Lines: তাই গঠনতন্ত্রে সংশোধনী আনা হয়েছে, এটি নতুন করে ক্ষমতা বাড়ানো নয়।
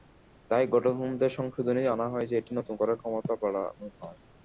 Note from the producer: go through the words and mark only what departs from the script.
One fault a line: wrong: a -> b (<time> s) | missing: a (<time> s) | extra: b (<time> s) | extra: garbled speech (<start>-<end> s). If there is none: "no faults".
no faults